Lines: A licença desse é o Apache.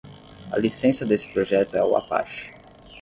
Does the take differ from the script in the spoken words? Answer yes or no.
yes